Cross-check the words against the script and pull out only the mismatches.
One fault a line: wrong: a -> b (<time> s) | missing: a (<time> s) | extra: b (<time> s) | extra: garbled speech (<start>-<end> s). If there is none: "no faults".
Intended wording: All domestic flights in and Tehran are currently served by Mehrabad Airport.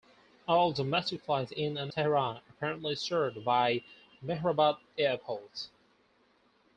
no faults